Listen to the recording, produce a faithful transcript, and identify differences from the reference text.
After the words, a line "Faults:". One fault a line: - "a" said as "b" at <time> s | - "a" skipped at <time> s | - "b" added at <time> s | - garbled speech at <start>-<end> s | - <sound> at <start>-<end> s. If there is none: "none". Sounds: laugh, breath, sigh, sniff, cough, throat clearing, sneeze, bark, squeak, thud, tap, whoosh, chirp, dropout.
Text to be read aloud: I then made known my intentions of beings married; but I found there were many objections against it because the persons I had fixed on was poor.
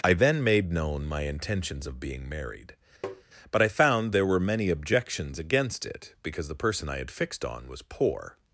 I then made known my intentions of being married; but I found there were many objections against it because the person I had fixed on was poor.
Faults:
- "beings" said as "being" at 2.0 s
- tap at 3.0-3.2 s
- "persons" said as "person" at 6.6 s